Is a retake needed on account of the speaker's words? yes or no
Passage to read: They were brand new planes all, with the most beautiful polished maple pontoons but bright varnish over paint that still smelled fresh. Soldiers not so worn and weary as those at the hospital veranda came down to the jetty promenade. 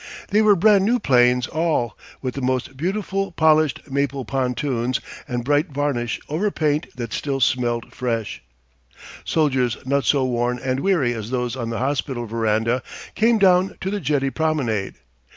yes